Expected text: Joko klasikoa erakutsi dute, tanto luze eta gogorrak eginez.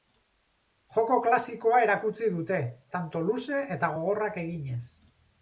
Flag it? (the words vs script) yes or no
no